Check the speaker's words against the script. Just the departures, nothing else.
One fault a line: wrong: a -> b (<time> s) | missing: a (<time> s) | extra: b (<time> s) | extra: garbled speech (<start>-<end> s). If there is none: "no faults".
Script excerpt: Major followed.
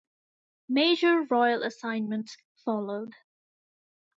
extra: royal assignments (1.3 s)